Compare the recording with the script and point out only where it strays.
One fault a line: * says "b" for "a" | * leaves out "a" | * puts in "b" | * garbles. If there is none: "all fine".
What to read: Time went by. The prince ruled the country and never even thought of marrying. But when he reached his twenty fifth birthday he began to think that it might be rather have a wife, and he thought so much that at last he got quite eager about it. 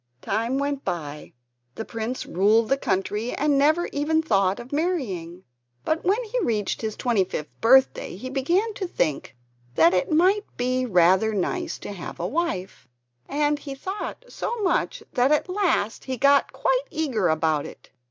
* puts in "nice to"